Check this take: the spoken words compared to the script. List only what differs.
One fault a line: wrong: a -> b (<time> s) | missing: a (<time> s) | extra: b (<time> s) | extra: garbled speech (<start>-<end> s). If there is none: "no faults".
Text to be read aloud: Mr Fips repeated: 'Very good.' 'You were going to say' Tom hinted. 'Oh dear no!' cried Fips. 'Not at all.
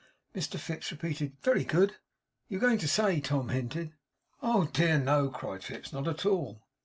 no faults